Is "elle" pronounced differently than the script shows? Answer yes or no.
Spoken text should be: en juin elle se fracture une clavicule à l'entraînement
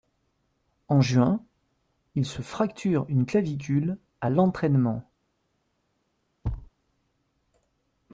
yes